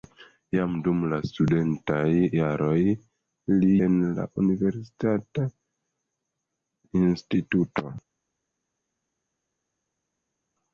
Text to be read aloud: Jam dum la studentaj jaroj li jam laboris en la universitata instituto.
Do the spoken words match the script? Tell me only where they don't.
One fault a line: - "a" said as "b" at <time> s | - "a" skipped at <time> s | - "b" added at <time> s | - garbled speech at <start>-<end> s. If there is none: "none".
- "jam laboris" skipped at 3.7 s